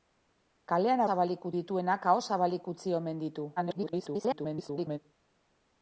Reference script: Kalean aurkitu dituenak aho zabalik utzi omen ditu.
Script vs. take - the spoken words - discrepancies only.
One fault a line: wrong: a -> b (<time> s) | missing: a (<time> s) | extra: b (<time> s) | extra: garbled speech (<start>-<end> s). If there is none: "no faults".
wrong: aurkitu -> zabalik (1.1 s)
extra: garbled speech (3.6-5.0 s)